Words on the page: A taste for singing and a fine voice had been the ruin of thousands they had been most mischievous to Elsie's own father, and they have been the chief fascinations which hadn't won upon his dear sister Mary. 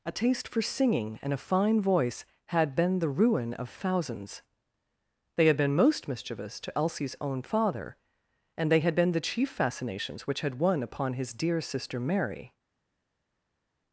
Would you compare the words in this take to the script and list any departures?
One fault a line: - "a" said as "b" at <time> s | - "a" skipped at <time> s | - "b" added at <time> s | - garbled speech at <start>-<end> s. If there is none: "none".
- "have" said as "had" at 8.8 s
- "hadn't" said as "had" at 10.4 s